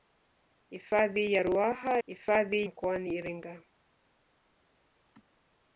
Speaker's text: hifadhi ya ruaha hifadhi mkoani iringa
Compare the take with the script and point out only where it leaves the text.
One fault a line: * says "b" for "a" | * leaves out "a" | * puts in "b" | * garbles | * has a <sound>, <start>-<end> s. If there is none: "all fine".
all fine